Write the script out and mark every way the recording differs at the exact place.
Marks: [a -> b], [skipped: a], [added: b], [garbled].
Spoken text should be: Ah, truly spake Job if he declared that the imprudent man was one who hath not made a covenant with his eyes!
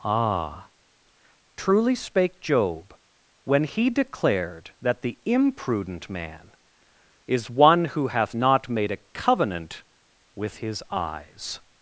Ah, truly spake Job [if -> when] he declared that the imprudent man [was -> is] one who hath not made a covenant with his eyes!